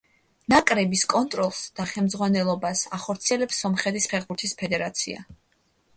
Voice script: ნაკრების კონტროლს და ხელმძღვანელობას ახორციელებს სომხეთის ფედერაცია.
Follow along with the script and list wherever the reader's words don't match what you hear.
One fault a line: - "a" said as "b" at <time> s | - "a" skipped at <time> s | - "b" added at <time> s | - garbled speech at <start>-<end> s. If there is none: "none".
- "ფეხბურთის" added at 4.1 s